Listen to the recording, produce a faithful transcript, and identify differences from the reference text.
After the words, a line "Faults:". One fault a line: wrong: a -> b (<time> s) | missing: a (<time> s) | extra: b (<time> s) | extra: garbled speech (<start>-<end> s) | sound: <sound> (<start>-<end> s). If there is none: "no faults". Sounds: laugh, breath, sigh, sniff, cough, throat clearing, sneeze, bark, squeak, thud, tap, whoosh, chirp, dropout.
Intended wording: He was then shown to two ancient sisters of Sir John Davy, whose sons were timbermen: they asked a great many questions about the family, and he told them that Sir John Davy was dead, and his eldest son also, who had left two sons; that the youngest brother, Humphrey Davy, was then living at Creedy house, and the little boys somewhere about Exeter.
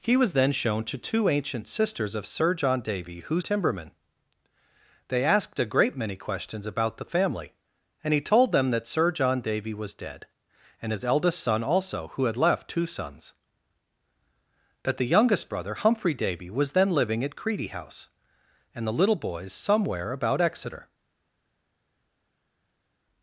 He was then shown to two ancient sisters of Sir John Davy, whose timbermen: they asked a great many questions about the family, and he told them that Sir John Davy was dead, and his eldest son also, who had left two sons; that the youngest brother, Humphrey Davy, was then living at Creedy house, and the little boys somewhere about Exeter.
Faults:
missing: sons were (3.5 s)